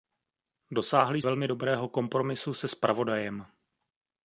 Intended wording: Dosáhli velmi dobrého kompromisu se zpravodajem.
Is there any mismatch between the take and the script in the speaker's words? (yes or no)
no